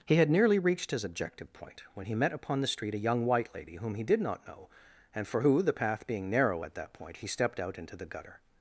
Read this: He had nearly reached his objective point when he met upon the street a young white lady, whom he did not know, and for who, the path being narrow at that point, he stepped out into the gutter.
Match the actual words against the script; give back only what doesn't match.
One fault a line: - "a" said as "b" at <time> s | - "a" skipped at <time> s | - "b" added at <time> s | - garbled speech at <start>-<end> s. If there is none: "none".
none